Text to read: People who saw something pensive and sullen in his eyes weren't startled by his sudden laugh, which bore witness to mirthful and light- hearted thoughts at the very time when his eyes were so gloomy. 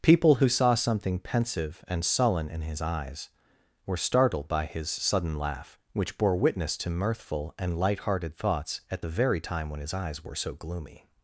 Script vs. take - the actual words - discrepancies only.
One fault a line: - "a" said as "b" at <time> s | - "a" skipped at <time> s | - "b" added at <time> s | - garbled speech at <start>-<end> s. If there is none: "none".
- "weren't" said as "were" at 3.8 s